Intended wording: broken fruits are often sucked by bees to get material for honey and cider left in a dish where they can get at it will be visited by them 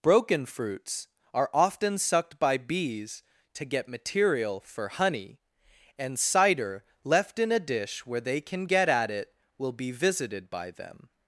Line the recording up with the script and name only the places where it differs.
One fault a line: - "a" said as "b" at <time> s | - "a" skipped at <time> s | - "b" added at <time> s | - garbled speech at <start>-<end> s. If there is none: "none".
none